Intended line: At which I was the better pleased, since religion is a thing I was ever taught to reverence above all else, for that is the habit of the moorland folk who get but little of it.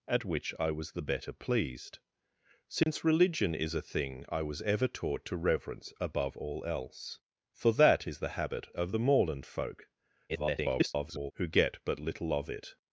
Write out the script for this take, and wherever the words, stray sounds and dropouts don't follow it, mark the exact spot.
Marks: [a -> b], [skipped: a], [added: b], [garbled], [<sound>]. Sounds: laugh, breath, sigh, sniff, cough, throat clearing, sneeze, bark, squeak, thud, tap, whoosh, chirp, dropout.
At which I was the better pleased, since [dropout] religion is a thing I was ever taught to reverence above all else, for that is the habit of the moorland folk [garbled] who get but little of it.